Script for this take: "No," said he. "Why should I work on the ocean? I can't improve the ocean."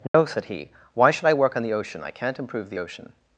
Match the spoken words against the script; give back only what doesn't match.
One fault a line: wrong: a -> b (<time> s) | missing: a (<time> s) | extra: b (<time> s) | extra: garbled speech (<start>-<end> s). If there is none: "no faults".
no faults